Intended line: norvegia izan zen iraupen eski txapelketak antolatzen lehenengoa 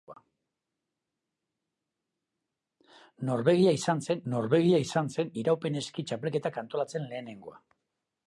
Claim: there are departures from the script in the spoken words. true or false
true